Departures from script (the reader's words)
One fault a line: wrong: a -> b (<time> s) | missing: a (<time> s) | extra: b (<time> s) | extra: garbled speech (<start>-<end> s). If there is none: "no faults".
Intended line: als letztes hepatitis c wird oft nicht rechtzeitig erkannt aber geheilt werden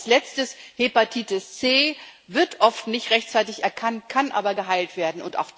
extra: kann (4.1 s)